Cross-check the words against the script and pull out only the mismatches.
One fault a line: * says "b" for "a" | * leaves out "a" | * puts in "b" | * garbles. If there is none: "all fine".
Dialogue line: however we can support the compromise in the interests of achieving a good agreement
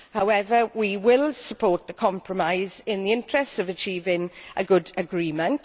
* says "will" for "can"